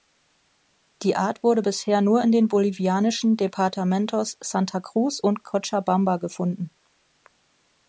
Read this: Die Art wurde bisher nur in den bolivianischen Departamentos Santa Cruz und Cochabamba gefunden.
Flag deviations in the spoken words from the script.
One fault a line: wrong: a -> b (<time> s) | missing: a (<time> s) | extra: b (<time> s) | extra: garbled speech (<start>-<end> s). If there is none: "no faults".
no faults